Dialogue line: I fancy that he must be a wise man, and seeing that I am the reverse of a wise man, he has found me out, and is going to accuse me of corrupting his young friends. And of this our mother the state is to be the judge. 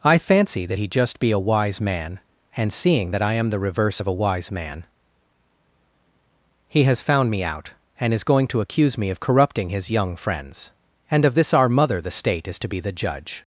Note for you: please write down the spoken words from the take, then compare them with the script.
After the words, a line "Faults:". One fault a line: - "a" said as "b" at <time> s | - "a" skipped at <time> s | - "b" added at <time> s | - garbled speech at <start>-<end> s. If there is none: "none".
I fancy that he just be a wise man, and seeing that I am the reverse of a wise man, he has found me out, and is going to accuse me of corrupting his young friends. And of this our mother the state is to be the judge.
Faults:
- "must" said as "just" at 0.9 s